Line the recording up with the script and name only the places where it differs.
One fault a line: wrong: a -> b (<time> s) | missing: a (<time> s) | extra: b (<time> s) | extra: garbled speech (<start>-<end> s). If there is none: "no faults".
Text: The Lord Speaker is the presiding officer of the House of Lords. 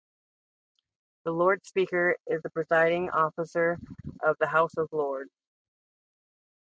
no faults